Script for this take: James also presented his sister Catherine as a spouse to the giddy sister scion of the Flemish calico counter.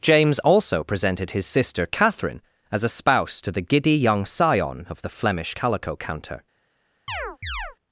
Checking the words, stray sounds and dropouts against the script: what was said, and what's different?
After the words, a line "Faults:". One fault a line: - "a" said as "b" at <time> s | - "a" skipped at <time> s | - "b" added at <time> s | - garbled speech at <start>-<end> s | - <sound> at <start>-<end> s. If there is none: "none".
James also presented his sister Catherine as a spouse to the giddy young scion of the Flemish calico counter.
Faults:
- "sister" said as "young" at 4.0 s
- chirp at 7.1-7.8 s